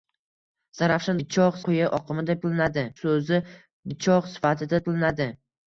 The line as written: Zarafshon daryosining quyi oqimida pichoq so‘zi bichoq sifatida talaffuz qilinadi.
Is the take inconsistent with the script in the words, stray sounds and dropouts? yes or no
yes